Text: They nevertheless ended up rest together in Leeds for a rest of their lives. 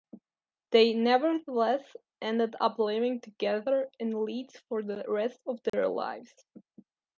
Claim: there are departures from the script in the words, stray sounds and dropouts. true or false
true